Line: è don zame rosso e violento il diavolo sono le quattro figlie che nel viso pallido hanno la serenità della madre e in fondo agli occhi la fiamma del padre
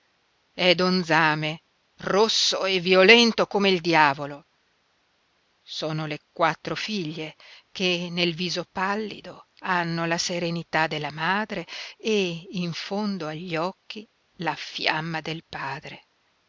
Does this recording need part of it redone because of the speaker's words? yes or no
yes